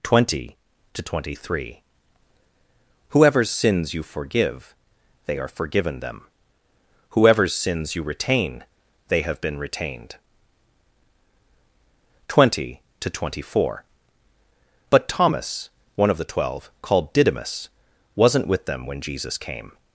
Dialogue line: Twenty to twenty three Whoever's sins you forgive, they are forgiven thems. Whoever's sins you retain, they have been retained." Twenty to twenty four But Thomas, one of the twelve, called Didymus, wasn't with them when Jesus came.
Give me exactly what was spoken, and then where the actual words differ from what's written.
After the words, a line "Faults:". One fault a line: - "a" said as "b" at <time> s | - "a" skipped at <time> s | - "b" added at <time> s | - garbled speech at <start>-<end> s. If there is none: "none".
Twenty to twenty three Whoever's sins you forgive, they are forgiven them. Whoever's sins you retain, they have been retained." Twenty to twenty four But Thomas, one of the twelve, called Didymus, wasn't with them when Jesus came.
Faults:
- "thems" said as "them" at 6.0 s